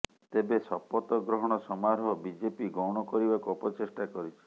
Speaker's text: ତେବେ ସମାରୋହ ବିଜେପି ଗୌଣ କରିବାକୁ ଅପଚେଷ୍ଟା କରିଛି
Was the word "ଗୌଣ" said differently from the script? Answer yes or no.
no